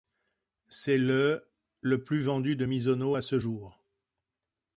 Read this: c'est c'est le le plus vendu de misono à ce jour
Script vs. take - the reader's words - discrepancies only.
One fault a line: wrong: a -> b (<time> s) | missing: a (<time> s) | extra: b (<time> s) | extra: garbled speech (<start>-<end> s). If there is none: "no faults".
missing: c'est (1.0 s)